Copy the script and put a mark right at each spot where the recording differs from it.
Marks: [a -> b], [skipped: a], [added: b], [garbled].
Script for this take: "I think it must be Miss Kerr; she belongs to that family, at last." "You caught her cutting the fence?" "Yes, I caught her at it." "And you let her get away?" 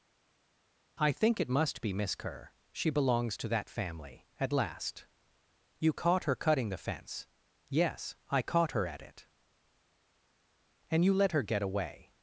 "I think it must be Miss Kerr; she belongs to that family, at last." "You caught her cutting the fence?" "Yes, I caught her at it." "And you let her get away?"